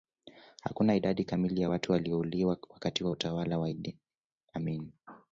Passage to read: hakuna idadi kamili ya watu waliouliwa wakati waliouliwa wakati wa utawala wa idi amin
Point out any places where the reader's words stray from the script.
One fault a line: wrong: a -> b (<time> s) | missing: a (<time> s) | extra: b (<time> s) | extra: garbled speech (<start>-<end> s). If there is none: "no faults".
missing: waliouliwa wakati (3.0 s)